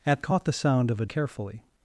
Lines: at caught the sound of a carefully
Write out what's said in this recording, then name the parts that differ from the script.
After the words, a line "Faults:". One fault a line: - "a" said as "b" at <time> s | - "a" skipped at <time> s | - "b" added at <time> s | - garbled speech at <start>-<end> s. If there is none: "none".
at caught the sound of a carefully
Faults:
none